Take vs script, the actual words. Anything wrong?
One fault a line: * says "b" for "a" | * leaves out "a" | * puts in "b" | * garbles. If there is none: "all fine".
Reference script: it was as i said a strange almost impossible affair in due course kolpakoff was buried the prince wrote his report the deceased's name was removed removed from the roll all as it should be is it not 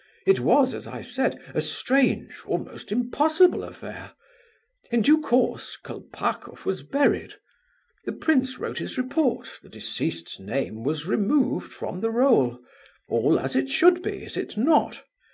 * leaves out "removed"